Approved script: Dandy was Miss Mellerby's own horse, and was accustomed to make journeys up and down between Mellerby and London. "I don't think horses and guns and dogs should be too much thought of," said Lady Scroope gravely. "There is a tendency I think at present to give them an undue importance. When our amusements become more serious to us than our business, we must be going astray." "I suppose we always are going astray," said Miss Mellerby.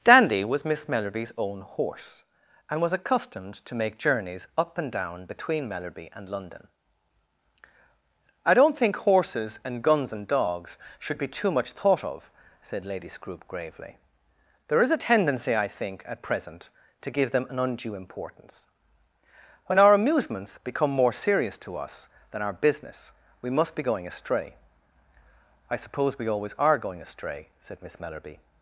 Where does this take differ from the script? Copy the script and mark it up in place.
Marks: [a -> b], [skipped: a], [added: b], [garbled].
Dandy was Miss Mellerby's own horse, and was accustomed to make journeys up and down between Mellerby and London. "I don't think horses and guns and dogs should be too much thought of," said Lady Scroope gravely. "There is a tendency I think at present to give them an undue importance. When our amusements become more serious to us than our business, we must be going astray." "I suppose we always are going astray," said Miss Mellerby.